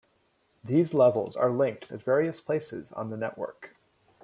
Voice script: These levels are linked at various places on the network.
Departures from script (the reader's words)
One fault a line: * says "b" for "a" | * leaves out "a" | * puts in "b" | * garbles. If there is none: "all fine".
all fine